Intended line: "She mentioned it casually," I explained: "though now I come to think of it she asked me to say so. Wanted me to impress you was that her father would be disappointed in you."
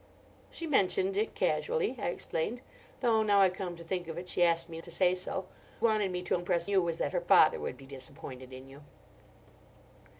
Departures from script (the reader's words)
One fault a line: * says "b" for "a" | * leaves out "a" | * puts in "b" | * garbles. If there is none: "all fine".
all fine